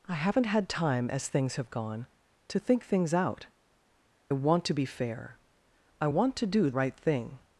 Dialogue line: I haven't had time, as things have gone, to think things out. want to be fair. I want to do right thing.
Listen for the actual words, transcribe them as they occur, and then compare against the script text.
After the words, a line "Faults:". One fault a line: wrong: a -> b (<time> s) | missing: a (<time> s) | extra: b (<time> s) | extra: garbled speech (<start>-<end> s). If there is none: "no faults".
I haven't had time, as things have gone, to think things out. want to be fair. I want to do right thing.
Faults:
no faults